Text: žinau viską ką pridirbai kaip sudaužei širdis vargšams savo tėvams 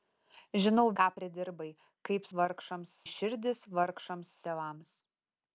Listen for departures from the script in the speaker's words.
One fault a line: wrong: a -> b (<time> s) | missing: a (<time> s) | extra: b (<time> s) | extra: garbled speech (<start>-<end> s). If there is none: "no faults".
missing: viską (0.8 s)
wrong: sudaužei -> vargšams (2.4 s)
missing: savo (4.3 s)